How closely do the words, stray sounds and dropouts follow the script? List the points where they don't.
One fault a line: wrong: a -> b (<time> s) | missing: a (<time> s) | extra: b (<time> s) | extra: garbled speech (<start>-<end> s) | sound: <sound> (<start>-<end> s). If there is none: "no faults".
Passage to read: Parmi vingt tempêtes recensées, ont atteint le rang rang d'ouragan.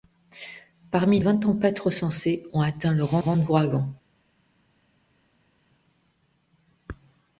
no faults